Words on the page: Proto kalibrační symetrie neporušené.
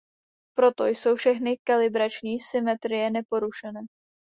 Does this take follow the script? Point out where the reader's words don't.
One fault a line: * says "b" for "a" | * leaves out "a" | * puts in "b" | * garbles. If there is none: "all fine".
* puts in "jsou všechny"